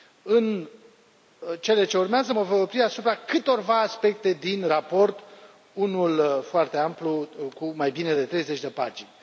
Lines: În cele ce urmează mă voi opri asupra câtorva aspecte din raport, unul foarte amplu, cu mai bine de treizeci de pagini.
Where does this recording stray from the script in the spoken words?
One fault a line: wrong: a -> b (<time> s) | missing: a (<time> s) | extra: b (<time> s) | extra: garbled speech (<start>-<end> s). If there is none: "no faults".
no faults